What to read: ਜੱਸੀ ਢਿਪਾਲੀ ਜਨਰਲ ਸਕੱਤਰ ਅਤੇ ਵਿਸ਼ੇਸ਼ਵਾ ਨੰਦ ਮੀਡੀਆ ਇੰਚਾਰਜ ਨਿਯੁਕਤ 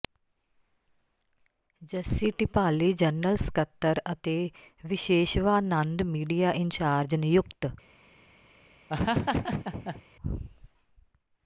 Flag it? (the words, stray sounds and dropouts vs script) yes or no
yes